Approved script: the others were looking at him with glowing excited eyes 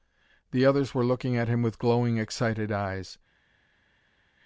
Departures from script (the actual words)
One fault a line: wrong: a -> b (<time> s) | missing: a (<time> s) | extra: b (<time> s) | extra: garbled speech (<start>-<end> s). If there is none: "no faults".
no faults